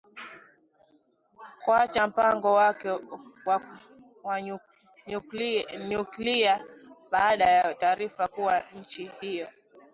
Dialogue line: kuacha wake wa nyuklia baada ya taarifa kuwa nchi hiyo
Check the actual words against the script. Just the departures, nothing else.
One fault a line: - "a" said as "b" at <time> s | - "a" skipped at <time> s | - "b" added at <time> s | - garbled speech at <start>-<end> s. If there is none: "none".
- "mpango" added at 2.1 s